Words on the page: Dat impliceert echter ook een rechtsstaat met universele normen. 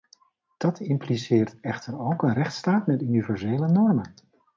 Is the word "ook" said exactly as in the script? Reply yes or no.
yes